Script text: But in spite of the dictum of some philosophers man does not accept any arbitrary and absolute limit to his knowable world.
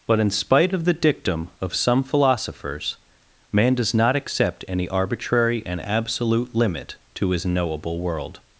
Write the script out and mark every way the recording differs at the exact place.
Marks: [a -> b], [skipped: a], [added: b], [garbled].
But in spite of the dictum of some philosophers man does not accept any arbitrary and absolute limit to his knowable world.